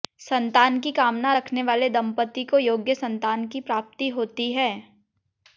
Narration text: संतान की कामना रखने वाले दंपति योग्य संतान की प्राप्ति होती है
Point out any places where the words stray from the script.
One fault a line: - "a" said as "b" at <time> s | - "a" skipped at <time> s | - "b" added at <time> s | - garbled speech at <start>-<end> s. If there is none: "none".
- "को" added at 2.4 s